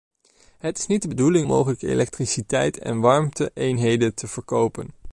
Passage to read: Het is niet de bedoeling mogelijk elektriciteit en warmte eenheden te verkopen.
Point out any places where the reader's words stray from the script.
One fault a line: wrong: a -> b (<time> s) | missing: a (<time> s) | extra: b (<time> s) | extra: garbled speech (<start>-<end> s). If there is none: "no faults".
no faults